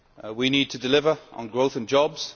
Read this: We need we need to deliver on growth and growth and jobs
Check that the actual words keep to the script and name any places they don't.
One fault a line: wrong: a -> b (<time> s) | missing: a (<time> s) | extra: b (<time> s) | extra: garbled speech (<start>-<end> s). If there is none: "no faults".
missing: we need (0.7 s)
missing: growth and (1.9 s)